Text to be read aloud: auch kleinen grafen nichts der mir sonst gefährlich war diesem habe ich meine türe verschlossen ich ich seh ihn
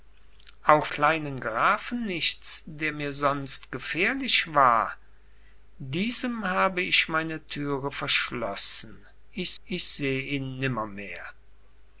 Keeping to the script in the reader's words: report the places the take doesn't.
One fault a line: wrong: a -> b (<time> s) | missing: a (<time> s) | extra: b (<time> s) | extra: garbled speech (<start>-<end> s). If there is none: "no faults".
no faults